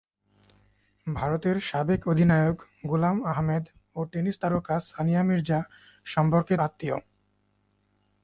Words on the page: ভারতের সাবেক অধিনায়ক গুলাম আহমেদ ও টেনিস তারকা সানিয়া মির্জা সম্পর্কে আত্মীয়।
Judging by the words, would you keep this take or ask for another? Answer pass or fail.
pass